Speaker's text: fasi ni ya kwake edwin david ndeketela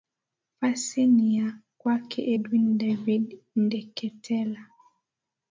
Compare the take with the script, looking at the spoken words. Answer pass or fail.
pass